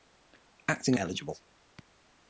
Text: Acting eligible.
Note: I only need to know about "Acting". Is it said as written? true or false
true